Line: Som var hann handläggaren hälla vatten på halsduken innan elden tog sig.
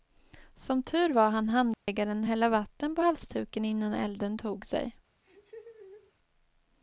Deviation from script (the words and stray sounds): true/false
true